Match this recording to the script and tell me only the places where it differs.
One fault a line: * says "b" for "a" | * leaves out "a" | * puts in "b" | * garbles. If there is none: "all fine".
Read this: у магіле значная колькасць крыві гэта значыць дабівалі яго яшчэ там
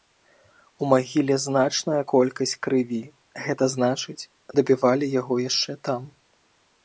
all fine